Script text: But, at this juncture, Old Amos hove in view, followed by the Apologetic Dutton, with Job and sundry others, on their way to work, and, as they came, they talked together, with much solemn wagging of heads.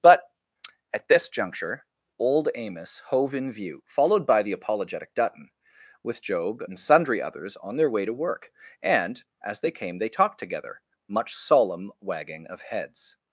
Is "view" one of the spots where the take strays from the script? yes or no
no